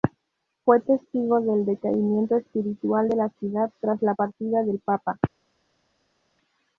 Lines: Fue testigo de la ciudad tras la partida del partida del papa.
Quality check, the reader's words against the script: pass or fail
fail